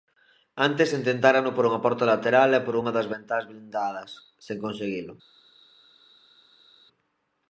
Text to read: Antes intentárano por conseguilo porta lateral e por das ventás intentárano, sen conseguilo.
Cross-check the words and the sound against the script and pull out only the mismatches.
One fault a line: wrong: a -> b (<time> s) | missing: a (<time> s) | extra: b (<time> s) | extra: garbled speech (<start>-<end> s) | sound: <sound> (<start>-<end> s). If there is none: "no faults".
wrong: conseguilo -> unha (1.7 s)
extra: unha (2.8 s)
wrong: intentárano -> blindadas (3.5 s)